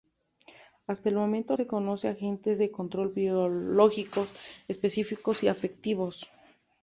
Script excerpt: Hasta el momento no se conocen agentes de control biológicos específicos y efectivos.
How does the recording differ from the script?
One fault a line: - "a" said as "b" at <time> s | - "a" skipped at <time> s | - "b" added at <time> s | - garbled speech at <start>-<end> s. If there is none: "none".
- "no" skipped at 1.6 s